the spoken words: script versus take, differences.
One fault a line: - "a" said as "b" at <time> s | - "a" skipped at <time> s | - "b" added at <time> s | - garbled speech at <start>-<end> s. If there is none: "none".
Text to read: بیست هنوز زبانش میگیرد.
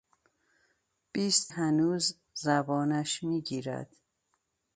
none